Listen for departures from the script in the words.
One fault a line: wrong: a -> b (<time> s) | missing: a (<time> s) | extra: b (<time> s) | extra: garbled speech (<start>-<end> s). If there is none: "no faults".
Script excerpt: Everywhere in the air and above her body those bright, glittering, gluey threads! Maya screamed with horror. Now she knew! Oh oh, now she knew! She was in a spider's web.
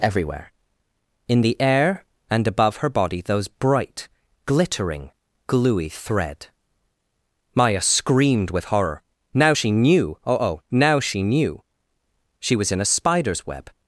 wrong: threads -> thread (5.9 s)